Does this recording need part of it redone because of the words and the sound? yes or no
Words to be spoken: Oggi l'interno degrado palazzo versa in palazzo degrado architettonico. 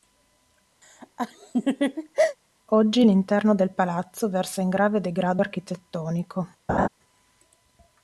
yes